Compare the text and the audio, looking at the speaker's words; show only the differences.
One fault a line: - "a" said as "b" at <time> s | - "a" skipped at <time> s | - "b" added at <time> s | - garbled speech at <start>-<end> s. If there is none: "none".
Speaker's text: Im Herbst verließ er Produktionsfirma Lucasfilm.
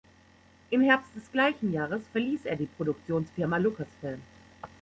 - "des gleichen Jahres" added at 1.1 s
- "die" added at 2.5 s